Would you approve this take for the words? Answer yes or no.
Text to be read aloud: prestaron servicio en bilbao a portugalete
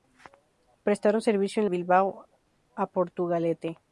yes